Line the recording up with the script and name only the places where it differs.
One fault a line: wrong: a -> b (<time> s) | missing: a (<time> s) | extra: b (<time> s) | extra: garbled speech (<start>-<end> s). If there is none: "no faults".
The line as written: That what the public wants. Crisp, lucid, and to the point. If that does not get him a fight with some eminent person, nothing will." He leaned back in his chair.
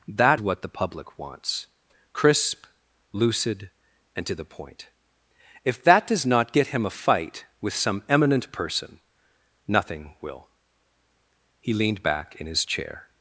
no faults